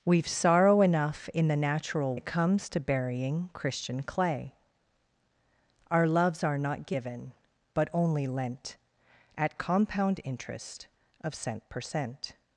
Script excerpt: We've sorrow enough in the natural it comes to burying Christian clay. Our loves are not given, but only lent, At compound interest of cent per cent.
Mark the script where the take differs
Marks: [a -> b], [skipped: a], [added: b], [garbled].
We've sorrow enough in the natural it comes to burying Christian clay. Our loves are not given, but only lent, At compound interest of cent per cent.